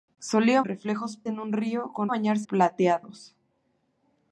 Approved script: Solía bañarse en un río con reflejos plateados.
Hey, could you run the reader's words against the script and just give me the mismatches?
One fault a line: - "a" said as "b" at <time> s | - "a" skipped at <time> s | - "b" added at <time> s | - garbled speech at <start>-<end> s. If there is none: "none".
- "bañarse" said as "reflejos" at 0.6 s
- "reflejos" said as "bañarse" at 2.1 s